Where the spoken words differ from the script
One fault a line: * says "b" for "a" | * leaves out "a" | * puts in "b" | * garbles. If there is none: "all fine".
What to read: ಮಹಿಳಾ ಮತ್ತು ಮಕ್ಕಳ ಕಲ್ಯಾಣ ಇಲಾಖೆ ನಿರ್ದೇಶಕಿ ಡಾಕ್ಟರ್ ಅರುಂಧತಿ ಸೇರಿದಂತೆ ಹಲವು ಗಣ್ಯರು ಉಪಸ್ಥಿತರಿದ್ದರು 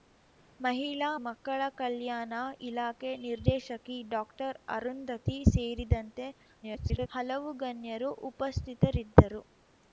* leaves out "ಮತ್ತು"
* garbles